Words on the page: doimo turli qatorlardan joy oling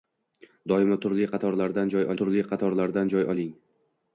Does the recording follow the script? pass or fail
fail